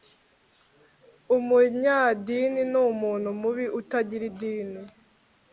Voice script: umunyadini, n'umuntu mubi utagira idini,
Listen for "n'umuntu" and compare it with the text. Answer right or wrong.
right